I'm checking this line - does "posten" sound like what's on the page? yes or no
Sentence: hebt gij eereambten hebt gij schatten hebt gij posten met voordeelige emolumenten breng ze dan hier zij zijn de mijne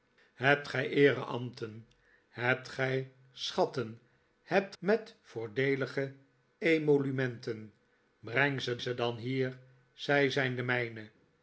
no